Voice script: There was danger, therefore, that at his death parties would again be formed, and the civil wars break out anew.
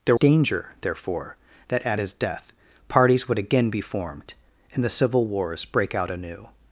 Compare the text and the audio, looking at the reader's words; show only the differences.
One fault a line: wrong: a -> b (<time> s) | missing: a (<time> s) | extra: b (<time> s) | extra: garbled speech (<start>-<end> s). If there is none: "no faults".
missing: was (0.2 s)